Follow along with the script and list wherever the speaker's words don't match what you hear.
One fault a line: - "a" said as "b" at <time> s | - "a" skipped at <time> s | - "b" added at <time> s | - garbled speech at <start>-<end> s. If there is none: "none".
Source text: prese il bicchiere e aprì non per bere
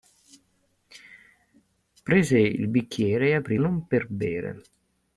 none